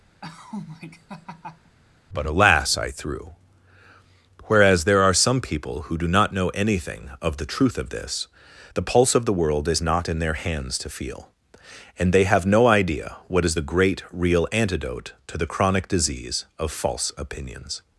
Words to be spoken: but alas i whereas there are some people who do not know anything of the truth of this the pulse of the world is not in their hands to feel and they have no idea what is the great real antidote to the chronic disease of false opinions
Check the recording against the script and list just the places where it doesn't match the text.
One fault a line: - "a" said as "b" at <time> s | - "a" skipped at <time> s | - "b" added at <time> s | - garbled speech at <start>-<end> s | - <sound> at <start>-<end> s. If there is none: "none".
- laugh at 0.2-1.8 s
- "threw" added at 2.9 s